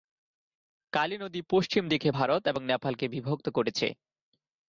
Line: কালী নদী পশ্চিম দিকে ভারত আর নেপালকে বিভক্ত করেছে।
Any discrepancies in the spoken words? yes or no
yes